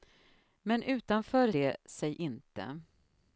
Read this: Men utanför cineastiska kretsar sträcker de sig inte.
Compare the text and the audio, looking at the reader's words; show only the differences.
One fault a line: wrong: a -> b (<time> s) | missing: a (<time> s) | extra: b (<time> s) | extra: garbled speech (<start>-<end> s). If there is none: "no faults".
missing: cineastiska kretsar sträcker (1.5 s)